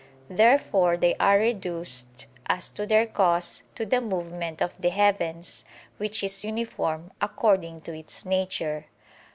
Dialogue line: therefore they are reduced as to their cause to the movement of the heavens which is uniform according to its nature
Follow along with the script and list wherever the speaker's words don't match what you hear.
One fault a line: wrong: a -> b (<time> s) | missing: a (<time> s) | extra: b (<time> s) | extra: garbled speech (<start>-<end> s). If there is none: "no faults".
no faults